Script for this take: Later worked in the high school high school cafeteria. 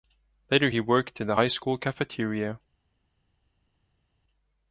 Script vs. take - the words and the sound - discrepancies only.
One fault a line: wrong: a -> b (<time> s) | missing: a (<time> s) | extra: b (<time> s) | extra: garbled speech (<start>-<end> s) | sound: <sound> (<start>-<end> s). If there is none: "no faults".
extra: he (0.7 s)
missing: high school (1.8 s)